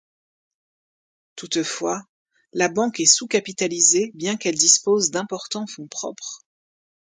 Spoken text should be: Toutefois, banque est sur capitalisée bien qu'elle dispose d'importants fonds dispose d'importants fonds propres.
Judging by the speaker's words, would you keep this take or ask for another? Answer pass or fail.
fail